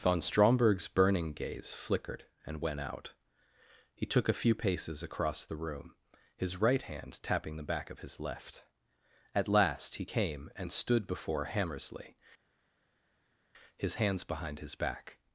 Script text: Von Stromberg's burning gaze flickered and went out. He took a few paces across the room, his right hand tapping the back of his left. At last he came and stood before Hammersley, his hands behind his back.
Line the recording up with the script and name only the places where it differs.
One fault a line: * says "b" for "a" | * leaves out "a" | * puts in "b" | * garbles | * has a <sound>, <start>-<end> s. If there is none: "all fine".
all fine